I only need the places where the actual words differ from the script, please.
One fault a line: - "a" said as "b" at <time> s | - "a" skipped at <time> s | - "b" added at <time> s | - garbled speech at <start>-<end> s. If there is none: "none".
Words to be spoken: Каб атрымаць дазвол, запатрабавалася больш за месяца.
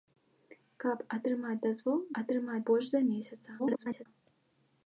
- "запатрабавалася" said as "атрымаць" at 2.2 s
- garbled speech at 3.6-4.1 s